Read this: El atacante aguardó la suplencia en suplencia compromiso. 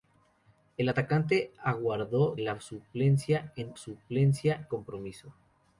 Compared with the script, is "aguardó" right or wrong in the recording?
right